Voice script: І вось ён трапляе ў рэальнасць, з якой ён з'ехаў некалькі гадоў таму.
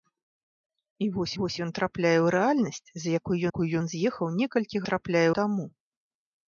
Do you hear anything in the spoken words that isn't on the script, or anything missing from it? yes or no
yes